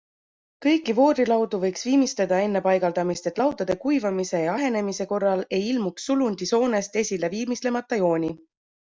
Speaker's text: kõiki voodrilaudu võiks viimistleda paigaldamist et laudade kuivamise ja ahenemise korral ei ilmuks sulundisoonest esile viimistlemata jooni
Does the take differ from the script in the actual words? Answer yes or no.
yes